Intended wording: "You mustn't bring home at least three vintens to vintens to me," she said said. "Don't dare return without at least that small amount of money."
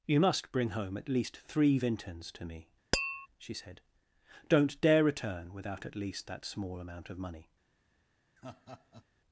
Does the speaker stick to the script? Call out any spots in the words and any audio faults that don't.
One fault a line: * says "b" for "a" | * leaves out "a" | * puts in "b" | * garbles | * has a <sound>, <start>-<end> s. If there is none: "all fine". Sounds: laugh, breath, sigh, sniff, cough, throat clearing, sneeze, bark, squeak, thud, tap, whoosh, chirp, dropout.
* says "must" for "mustn't"
* leaves out "vintens to"
* has a tap, 2.9-3.3 s
* leaves out "said"
* has a laugh, 8.4-9.0 s